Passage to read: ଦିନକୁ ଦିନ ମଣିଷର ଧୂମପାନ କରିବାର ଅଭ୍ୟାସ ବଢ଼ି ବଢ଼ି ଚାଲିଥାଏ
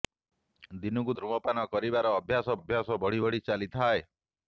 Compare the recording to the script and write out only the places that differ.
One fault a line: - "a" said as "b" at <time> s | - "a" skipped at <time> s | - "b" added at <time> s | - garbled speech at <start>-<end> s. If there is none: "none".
- "ଦିନ ମଣିଷର" skipped at 1.1 s
- "ଅଭ୍ୟାସ" added at 2.5 s